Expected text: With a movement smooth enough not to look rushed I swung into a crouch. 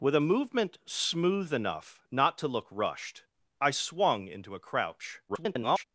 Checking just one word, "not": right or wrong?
right